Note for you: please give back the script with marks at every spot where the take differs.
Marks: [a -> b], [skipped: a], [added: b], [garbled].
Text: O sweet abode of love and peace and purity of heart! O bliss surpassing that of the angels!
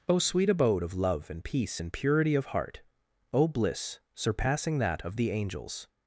O sweet abode of love and peace and purity of heart! O bliss surpassing that of the angels!